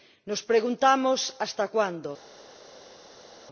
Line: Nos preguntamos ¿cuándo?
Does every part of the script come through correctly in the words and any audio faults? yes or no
no